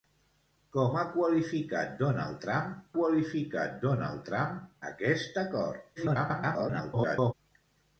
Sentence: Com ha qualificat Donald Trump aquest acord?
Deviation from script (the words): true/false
true